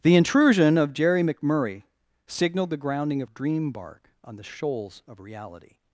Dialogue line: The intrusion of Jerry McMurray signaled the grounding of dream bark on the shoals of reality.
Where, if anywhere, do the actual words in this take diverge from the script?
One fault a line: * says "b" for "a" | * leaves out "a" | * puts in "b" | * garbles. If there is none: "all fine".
all fine